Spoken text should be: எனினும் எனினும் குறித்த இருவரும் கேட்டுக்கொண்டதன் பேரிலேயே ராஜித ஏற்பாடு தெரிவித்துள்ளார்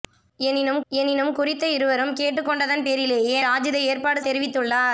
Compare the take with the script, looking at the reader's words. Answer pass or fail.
pass